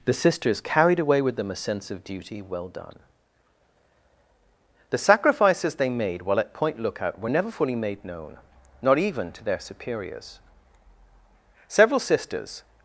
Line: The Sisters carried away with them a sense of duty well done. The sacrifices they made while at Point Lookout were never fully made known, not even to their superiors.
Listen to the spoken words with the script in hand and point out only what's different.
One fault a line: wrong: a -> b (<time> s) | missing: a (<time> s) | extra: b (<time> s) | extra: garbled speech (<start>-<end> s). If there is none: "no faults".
extra: Several Sisters (11.7 s)